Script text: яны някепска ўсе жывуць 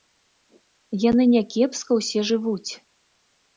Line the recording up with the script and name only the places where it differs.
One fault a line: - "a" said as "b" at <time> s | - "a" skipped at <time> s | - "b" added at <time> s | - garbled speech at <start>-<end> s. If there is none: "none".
none